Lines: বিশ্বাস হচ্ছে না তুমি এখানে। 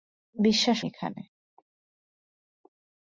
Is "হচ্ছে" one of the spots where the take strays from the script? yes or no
yes